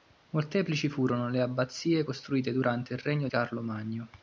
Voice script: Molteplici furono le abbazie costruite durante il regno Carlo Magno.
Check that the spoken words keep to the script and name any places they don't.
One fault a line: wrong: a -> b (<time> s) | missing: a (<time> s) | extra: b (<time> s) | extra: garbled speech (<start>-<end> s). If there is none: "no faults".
no faults